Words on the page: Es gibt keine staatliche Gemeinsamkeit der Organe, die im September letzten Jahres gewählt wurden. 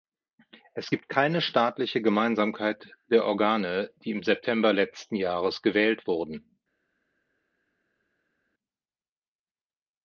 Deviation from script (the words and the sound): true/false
false